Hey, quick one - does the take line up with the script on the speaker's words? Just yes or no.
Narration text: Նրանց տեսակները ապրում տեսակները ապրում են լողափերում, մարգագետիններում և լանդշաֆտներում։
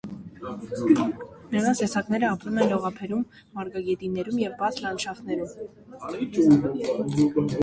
no